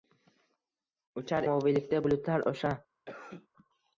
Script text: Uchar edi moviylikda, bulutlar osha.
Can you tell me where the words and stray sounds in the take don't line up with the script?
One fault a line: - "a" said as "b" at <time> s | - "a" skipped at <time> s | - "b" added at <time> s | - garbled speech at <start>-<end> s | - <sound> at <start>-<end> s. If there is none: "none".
- "edi" skipped at 1.5 s
- cough at 3.1-3.5 s